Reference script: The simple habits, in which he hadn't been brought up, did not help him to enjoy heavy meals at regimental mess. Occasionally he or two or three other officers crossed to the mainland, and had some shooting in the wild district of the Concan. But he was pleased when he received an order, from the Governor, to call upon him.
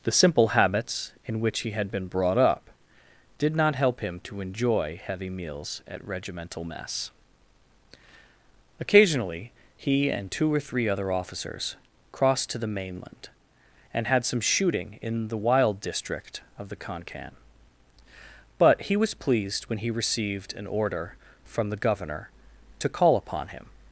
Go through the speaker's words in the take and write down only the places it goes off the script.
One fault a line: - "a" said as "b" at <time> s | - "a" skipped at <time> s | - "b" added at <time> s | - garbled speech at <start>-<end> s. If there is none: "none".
- "hadn't" said as "had" at 1.7 s
- "or" said as "and" at 10.1 s